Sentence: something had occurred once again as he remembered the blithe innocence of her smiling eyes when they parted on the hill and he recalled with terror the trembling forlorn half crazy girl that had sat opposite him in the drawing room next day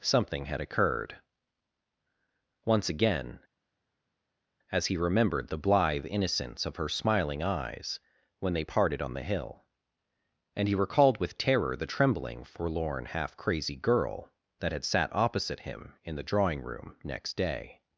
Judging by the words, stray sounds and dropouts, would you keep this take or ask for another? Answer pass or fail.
pass